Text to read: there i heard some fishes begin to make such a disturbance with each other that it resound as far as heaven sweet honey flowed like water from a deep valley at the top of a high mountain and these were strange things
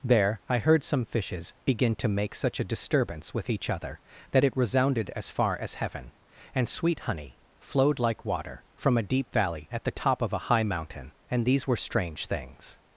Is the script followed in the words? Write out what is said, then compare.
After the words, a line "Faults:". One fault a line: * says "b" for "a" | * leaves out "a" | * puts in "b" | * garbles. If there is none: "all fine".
there i heard some fishes begin to make such a disturbance with each other that it resounded as far as heaven and sweet honey flowed like water from a deep valley at the top of a high mountain and these were strange things
Faults:
* says "resounded" for "resound"
* puts in "and"